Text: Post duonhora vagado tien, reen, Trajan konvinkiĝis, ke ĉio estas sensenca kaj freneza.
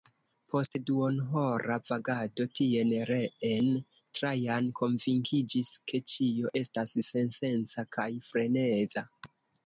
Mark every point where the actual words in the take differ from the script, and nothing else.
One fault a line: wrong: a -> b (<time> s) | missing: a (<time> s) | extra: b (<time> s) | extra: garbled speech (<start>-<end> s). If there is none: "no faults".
no faults